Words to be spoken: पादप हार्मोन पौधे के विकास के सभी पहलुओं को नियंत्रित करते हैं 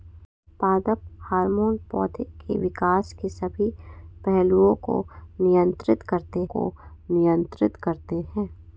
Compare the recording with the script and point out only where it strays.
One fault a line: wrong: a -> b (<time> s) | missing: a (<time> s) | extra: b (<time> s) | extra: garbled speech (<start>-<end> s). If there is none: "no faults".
extra: को नियंत्रित करते (6.5 s)